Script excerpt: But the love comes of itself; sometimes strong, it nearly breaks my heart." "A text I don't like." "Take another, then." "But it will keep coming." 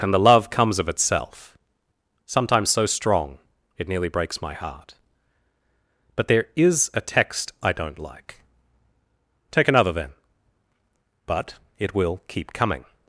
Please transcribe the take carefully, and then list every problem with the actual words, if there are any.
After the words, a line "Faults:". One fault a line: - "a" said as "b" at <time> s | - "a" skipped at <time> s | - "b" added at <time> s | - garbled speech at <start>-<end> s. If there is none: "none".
And the love comes of itself; sometimes so strong, it nearly breaks my heart." "But there is a text I don't like." "Take another, then." "But it will keep coming."
Faults:
- "But" said as "And" at 0.0 s
- "so" added at 2.7 s
- "But there is" added at 6.2 s